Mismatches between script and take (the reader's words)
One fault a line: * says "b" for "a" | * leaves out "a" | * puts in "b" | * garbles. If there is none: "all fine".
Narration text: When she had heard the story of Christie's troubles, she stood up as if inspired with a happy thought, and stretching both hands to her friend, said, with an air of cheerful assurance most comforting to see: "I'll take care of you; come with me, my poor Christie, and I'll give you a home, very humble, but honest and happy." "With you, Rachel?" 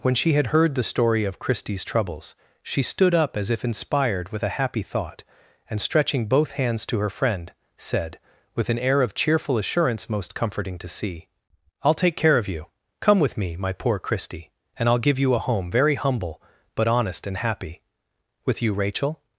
all fine